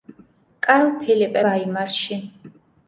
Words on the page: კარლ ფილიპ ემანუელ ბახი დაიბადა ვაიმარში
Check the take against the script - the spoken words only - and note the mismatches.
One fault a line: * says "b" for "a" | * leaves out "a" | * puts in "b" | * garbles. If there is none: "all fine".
* leaves out "ემანუელ ბახი დაიბადა"